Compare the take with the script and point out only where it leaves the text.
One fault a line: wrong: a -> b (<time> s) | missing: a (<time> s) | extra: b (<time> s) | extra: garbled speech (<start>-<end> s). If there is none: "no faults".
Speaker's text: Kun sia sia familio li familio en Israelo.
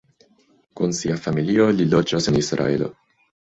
missing: sia (1.2 s)
wrong: familio -> loĝas (1.9 s)